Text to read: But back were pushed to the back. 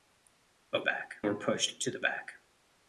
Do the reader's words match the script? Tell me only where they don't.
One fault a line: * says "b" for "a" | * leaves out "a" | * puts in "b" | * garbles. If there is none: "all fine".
all fine